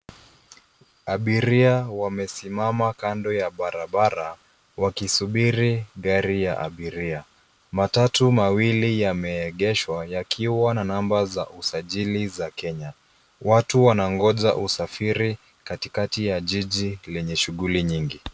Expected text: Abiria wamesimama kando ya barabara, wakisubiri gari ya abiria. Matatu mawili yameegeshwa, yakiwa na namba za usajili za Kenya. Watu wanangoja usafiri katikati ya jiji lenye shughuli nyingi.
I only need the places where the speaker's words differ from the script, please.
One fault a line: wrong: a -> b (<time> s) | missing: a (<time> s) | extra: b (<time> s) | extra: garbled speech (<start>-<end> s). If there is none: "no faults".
no faults